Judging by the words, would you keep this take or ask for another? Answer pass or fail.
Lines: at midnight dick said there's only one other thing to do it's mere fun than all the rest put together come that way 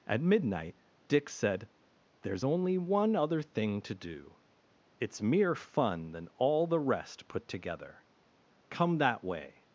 pass